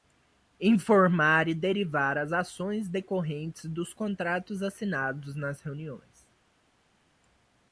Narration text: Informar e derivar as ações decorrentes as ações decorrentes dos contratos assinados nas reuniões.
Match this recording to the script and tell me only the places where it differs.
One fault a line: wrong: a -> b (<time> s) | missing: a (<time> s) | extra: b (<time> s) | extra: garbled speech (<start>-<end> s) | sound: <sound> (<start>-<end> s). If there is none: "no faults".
missing: as ações decorrentes (3.6 s)